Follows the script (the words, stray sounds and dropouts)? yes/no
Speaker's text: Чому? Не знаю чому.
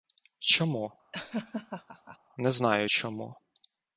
no